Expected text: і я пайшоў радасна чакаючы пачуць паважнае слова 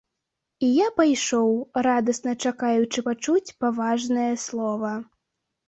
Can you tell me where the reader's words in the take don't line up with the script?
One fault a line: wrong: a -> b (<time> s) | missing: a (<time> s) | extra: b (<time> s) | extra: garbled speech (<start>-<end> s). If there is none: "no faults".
no faults